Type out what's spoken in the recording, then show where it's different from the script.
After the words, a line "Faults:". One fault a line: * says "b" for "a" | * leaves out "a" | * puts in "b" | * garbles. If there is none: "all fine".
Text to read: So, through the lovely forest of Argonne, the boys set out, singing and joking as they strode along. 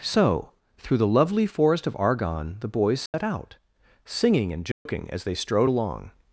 So, through the lovely forest of Argonne, the boys set out, singing and joking as they strode along.
Faults:
all fine